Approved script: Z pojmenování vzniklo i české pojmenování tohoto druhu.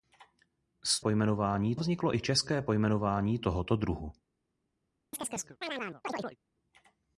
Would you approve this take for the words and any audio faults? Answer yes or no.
no